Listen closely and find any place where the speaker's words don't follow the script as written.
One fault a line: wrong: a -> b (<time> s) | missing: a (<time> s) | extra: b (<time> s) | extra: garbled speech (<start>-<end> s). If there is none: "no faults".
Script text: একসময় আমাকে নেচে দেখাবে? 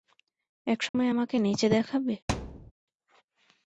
no faults